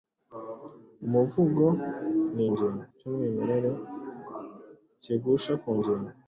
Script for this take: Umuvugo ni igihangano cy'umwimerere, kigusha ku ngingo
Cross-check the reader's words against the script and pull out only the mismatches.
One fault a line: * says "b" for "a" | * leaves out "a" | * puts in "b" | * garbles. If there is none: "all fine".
* says "ngingo" for "igihangano"